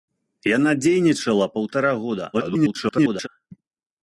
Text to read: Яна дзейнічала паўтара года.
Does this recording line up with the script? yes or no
no